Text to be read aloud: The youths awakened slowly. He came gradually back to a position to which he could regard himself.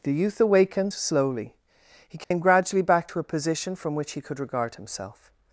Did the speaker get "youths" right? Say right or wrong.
wrong